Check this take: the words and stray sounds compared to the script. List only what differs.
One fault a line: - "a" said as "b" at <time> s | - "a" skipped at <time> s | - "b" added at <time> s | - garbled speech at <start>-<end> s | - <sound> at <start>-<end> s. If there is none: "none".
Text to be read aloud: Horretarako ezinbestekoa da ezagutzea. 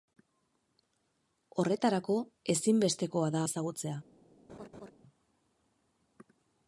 - laugh at 4.5-4.9 s